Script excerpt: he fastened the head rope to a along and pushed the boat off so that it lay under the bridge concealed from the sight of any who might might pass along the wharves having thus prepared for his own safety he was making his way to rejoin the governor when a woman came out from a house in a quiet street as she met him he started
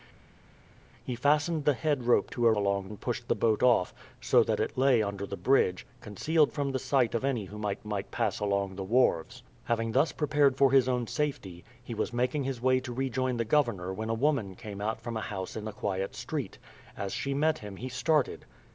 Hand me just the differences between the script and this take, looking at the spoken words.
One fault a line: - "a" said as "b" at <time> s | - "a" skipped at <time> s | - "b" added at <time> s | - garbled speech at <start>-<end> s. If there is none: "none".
none